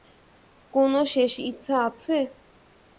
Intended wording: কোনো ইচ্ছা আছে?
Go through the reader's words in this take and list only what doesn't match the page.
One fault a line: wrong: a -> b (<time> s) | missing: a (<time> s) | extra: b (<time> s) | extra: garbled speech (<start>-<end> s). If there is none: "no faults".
extra: শেষ (1.1 s)